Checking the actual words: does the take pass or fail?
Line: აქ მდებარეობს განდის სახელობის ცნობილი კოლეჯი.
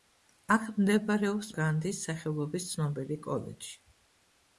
pass